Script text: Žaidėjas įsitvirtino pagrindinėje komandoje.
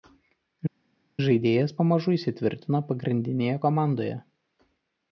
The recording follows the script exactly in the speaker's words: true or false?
false